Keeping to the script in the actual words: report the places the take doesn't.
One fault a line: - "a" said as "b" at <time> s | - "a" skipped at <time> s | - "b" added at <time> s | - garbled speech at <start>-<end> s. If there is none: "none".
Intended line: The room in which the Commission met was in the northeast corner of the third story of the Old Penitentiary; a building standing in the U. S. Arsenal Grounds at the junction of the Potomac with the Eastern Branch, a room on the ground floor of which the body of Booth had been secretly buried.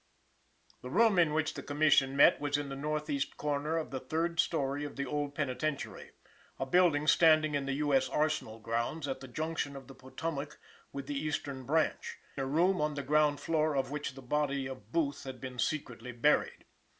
none